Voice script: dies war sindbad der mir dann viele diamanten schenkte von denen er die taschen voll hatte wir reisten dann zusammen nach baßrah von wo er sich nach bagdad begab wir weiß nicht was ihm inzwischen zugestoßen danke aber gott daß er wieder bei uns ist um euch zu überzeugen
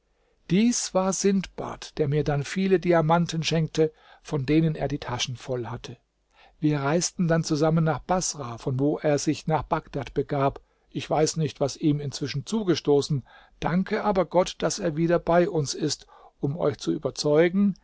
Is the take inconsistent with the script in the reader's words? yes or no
yes